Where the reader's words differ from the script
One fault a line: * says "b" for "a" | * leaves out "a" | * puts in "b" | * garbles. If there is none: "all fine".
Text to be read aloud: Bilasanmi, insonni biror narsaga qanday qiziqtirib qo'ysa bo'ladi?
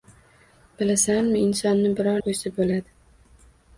* leaves out "narsaga qanday qiziqtirib"